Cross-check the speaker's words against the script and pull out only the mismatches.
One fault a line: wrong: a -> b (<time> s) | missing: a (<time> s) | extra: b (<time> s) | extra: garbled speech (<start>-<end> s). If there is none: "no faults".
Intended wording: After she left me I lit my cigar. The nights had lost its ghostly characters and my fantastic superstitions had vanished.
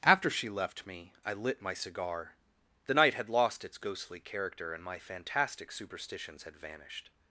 wrong: nights -> night (3.0 s)
wrong: characters -> character (4.2 s)